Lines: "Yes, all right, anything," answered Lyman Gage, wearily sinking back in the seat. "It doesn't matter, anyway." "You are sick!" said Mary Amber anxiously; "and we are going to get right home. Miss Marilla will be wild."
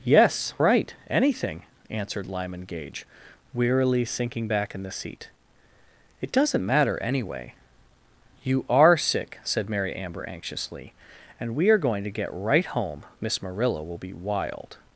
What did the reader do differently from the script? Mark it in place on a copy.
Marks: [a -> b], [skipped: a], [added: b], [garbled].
"Yes, [skipped: all] right, anything," answered Lyman Gage, wearily sinking back in the seat. "It doesn't matter, anyway." "You are sick!" said Mary Amber anxiously; "and we are going to get right home. Miss Marilla will be wild."